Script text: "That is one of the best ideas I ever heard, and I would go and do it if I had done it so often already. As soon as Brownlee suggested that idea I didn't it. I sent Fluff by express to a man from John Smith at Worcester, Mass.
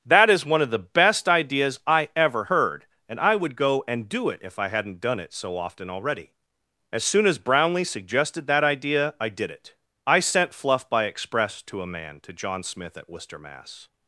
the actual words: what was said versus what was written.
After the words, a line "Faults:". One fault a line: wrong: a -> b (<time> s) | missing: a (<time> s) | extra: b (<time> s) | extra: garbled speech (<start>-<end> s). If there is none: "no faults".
"That is one of the best ideas I ever heard, and I would go and do it if I hadn't done it so often already. As soon as Brownlee suggested that idea I did it. I sent Fluff by express to a man to John Smith at Worcester, Mass.
Faults:
wrong: had -> hadn't (4.7 s)
wrong: didn't -> did (9.3 s)
wrong: from -> to (12.2 s)